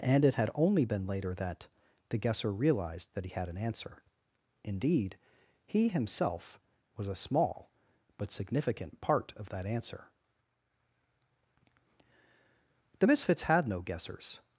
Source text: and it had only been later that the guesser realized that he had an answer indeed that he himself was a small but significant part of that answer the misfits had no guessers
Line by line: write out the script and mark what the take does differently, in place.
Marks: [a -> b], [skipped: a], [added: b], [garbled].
and it had only been later that the guesser realized that he had an answer indeed [skipped: that] he himself was a small but significant part of that answer the misfits had no guessers